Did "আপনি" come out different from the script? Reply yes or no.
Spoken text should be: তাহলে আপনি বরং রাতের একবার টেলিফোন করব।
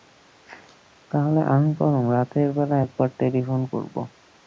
yes